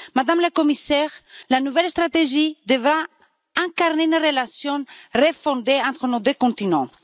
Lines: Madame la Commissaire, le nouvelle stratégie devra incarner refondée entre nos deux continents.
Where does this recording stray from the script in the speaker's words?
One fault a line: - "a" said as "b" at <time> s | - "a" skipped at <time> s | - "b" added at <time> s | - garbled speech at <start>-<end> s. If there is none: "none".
- "le" said as "la" at 1.5 s
- "une relation" added at 4.0 s